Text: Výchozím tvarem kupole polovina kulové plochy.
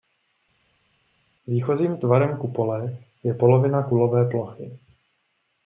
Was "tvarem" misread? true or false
false